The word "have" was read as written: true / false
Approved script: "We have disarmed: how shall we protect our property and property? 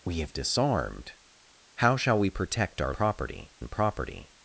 true